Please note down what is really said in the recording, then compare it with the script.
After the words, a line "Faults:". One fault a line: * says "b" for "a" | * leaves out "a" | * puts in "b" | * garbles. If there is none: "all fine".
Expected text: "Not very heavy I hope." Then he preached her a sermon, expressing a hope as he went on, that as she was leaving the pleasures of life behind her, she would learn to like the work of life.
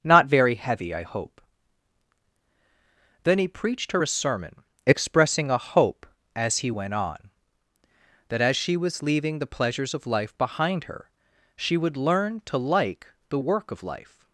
"Not very heavy I hope." Then he preached her a sermon, expressing a hope as he went on, that as she was leaving the pleasures of life behind her, she would learn to like the work of life.
Faults:
all fine